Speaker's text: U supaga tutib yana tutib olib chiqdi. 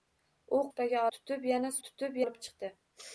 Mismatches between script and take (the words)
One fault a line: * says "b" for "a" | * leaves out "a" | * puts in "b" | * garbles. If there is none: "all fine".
all fine